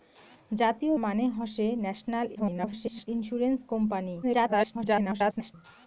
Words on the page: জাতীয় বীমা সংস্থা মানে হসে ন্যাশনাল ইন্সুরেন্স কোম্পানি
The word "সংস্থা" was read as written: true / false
false